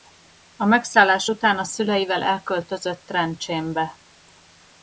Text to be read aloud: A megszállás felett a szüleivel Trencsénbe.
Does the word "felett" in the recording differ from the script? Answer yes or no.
yes